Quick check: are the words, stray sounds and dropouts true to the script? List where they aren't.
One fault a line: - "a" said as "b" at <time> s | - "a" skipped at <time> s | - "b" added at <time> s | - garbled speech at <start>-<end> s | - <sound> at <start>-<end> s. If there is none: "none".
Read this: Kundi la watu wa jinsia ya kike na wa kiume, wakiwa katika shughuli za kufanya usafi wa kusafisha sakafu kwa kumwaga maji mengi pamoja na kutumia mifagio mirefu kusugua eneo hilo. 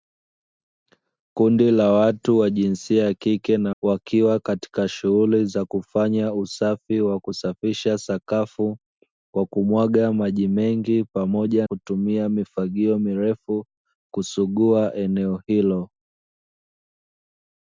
- "wa kiume" skipped at 3.8 s
- "na" skipped at 11.7 s